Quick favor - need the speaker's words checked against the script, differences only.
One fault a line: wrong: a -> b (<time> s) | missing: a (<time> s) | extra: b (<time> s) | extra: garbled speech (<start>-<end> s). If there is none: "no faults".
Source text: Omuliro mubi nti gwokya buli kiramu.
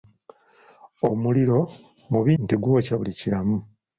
no faults